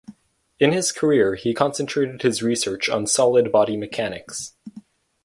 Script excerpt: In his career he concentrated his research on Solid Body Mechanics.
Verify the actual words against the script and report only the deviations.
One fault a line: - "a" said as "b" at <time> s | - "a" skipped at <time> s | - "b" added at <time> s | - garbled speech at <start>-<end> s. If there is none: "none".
none